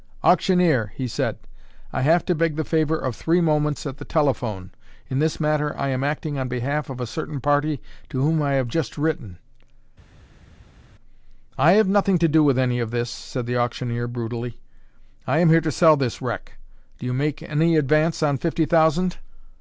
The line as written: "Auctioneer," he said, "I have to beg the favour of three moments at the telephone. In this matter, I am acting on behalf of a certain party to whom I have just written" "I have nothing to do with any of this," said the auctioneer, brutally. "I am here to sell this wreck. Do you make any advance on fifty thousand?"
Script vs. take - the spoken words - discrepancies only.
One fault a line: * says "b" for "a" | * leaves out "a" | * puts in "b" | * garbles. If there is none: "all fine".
all fine